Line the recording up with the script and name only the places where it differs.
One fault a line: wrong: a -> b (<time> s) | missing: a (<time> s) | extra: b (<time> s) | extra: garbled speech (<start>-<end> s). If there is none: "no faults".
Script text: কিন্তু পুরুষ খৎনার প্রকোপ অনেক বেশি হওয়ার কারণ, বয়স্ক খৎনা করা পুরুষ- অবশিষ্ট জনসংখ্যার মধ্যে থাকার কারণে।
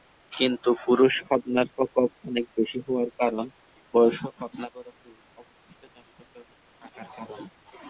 no faults